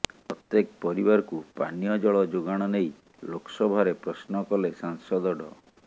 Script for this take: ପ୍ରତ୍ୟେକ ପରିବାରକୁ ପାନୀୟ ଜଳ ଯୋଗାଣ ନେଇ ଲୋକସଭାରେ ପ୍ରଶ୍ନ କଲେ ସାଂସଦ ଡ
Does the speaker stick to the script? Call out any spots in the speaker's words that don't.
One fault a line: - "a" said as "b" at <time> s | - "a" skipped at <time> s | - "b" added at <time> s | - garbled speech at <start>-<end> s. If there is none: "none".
none